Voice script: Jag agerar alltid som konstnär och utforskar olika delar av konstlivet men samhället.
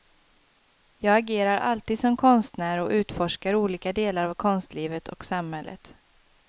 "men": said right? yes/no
no